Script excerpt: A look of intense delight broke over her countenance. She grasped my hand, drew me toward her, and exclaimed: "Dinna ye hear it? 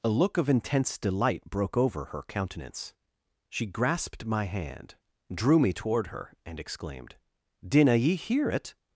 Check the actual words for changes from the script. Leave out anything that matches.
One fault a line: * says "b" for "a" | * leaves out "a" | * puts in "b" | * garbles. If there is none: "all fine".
all fine